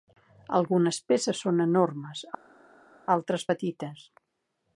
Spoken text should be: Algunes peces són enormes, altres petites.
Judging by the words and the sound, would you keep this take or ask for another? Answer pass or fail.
pass